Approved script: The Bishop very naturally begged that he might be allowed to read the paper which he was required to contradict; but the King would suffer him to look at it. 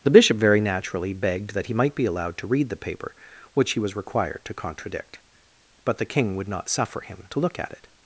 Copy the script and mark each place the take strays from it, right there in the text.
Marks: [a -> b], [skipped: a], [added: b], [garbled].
The Bishop very naturally begged that he might be allowed to read the paper which he was required to contradict; but the King would [added: not] suffer him to look at it.